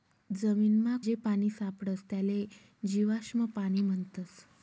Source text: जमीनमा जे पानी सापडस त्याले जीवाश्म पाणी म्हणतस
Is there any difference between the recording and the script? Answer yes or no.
no